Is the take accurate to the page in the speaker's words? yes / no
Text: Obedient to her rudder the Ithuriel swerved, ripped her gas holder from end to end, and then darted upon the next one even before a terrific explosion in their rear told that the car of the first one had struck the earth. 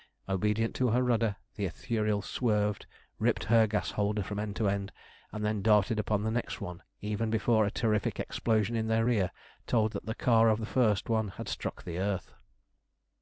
yes